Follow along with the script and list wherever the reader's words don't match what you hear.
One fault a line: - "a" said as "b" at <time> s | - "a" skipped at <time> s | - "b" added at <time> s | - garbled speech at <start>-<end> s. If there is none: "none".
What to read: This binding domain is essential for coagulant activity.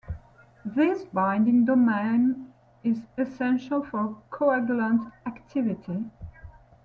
none